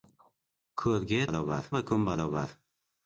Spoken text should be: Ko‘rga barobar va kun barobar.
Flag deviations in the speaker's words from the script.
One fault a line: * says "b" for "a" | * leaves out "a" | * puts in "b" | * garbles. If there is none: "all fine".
all fine